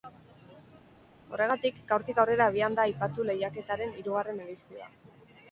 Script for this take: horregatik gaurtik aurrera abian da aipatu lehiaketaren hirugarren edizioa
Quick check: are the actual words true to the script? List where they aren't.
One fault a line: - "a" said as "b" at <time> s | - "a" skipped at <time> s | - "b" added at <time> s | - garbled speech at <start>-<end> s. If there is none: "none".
none